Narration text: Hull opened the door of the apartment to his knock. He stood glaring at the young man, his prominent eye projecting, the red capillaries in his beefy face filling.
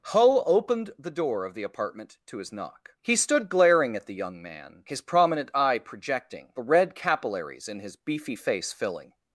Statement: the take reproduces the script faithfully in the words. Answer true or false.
true